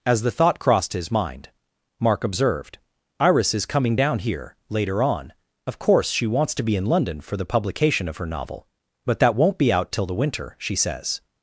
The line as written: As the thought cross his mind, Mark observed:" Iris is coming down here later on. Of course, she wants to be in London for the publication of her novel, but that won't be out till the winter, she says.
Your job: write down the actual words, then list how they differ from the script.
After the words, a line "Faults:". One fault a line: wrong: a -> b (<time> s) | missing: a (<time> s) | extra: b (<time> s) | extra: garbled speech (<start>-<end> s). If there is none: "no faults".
As the thought crossed his mind, Mark observed:" Iris is coming down here later on. Of course, she wants to be in London for the publication of her novel, but that won't be out till the winter, she says.
Faults:
wrong: cross -> crossed (0.6 s)